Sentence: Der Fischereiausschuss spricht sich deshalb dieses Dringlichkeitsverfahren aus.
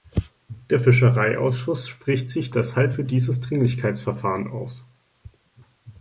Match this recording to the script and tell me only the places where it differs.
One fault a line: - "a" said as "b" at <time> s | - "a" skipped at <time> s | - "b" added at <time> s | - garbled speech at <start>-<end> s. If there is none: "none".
- "für" added at 2.9 s